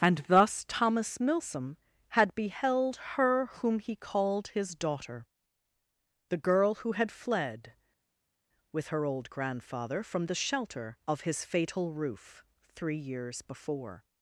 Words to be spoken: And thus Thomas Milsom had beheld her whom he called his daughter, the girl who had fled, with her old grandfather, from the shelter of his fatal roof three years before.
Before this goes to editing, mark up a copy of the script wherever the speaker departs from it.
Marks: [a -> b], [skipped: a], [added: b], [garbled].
And thus Thomas Milsom had beheld her whom he called his daughter, the girl who had fled, with her old grandfather, from the shelter of his fatal roof three years before.